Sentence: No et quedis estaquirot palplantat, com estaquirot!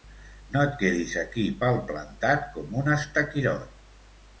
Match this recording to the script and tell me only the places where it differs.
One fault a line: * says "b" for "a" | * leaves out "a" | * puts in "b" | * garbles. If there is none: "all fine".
* says "aquí" for "estaquirot"
* puts in "un"